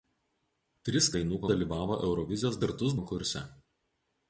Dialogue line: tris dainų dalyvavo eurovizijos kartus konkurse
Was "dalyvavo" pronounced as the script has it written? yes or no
yes